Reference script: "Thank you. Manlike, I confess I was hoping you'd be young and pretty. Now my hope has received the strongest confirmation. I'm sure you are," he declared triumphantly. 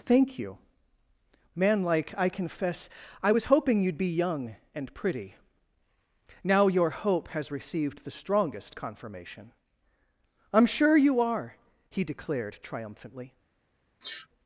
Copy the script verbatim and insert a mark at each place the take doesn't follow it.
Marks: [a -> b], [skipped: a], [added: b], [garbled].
"Thank you. Manlike, I confess I was hoping you'd be young and pretty. Now [my -> your] hope has received the strongest confirmation. I'm sure you are," he declared triumphantly.